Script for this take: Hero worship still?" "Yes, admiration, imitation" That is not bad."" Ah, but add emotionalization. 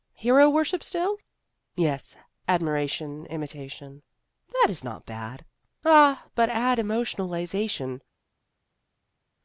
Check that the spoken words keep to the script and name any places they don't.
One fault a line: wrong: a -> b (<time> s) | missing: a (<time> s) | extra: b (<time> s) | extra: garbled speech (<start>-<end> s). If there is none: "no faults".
no faults